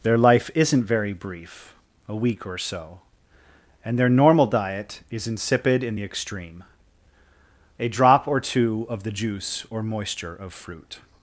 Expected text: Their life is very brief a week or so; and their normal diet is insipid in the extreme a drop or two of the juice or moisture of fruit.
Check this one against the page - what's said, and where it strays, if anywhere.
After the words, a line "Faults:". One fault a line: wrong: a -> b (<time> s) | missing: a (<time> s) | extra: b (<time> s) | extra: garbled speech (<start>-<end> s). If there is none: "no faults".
Their life isn't very brief a week or so; and their normal diet is insipid in the extreme a drop or two of the juice or moisture of fruit.
Faults:
wrong: is -> isn't (0.6 s)